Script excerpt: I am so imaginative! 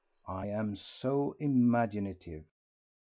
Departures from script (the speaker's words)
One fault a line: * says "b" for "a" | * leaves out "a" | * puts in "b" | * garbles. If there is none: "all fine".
all fine